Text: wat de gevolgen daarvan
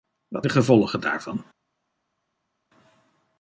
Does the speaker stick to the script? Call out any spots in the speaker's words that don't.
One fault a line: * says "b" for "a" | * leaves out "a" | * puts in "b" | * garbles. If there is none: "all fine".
all fine